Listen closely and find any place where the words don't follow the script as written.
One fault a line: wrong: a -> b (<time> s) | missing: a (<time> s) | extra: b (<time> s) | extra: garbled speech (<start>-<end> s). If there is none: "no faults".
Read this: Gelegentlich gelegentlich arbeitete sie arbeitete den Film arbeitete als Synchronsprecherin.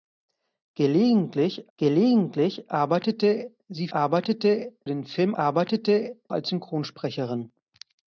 no faults